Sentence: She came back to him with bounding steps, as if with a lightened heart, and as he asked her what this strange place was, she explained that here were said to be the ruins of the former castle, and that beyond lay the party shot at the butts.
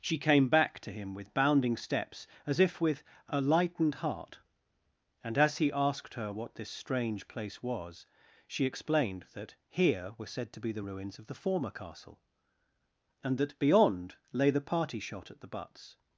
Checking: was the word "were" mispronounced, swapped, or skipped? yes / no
no